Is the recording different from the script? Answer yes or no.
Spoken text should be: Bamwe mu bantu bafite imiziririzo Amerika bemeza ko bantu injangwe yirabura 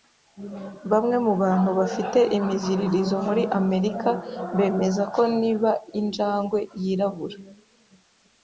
yes